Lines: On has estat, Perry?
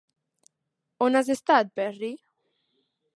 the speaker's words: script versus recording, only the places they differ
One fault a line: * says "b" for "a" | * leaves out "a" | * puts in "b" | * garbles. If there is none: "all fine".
all fine